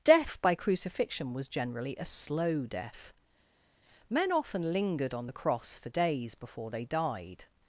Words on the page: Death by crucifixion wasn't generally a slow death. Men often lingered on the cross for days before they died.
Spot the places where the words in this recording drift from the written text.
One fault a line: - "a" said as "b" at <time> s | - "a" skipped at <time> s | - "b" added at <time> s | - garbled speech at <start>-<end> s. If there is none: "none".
- "wasn't" said as "was" at 1.3 s